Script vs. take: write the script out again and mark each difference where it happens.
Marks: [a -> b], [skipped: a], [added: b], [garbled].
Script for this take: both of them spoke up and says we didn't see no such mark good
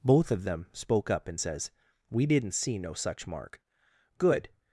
both of them spoke up and says we didn't see no such mark good